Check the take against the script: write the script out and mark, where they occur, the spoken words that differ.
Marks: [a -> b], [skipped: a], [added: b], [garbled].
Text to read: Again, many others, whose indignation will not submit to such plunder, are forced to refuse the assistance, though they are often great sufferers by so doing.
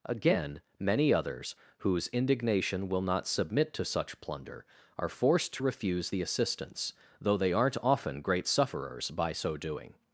Again, many others, whose indignation will not submit to such plunder, are forced to refuse the assistance, though they [are -> aren't] often great sufferers by so doing.